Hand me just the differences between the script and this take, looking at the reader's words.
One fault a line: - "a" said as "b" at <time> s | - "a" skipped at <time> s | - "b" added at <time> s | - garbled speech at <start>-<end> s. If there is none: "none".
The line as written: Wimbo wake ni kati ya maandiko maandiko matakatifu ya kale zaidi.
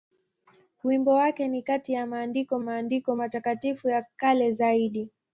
none